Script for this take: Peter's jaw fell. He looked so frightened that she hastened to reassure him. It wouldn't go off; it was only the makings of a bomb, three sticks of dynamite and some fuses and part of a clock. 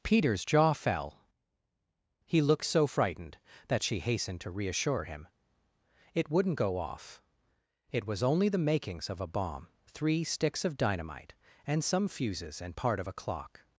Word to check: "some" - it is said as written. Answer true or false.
true